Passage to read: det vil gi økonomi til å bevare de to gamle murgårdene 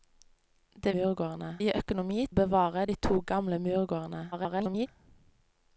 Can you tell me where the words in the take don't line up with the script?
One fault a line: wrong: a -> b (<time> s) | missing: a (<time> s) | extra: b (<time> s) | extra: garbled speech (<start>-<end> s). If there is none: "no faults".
wrong: vil -> murgårdene (1.0 s)
missing: til (2.3 s)
extra: garbled speech (4.3-4.9 s)